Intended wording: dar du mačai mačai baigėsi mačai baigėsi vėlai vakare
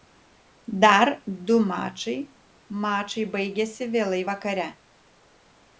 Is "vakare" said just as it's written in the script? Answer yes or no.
yes